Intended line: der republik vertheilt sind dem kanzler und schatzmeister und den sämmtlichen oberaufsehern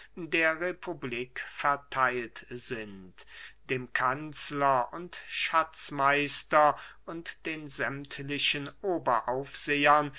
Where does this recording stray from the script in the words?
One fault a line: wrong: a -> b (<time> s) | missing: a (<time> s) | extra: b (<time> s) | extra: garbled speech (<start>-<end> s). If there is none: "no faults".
no faults